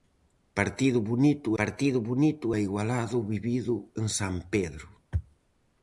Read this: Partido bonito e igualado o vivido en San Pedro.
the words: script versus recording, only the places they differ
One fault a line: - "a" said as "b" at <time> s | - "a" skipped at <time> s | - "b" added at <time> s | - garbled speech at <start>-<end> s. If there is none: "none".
- "partido bonito" added at 1.6 s